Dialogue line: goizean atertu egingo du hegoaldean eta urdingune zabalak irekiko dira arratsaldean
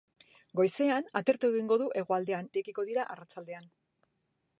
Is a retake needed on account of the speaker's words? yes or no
yes